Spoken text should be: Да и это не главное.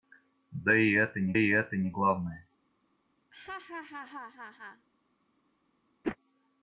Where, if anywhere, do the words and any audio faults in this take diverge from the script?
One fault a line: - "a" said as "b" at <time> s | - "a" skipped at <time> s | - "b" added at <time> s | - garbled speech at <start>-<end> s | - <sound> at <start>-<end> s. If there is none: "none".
- "и это не" added at 1.4 s
- laugh at 3.3-4.9 s
- whoosh at 6.0-6.2 s